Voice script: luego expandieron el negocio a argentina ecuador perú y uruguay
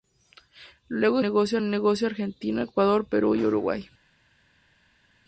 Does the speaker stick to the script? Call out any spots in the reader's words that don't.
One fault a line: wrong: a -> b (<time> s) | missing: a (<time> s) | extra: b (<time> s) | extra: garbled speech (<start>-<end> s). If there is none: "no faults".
wrong: expandieron -> negocio (1.2 s)